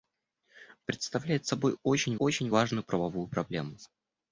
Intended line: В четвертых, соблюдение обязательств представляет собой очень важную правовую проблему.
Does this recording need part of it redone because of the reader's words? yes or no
yes